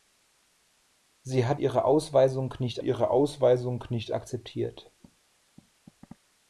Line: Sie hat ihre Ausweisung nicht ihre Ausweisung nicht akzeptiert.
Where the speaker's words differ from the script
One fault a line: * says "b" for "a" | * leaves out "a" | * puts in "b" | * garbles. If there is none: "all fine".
all fine